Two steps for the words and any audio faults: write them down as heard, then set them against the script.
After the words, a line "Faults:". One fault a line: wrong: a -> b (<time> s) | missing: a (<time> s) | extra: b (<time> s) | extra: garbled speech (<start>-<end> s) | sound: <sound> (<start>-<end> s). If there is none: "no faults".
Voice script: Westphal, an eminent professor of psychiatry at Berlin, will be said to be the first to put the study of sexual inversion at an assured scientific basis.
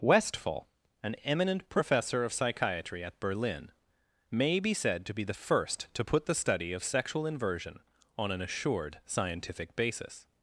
Westphal, an eminent professor of psychiatry at Berlin, may be said to be the first to put the study of sexual inversion on an assured scientific basis.
Faults:
wrong: will -> may (4.3 s)
wrong: at -> on (8.2 s)